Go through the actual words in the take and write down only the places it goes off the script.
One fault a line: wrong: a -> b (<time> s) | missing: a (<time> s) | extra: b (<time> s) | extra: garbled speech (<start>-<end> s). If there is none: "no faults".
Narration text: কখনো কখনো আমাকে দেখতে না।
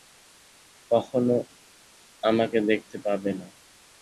missing: কখনো (1.4 s)
extra: পাবে (3.0 s)